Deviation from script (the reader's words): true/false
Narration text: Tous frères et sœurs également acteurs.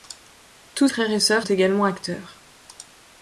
false